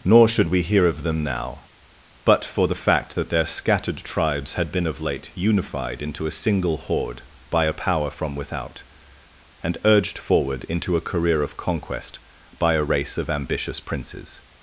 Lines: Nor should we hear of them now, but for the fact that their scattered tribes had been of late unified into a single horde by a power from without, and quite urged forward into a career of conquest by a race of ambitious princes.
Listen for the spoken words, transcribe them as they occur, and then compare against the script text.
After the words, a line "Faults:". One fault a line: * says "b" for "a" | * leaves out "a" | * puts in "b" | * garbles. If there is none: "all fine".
Nor should we hear of them now, but for the fact that their scattered tribes had been of late unified into a single horde by a power from without, and urged forward into a career of conquest by a race of ambitious princes.
Faults:
* leaves out "quite"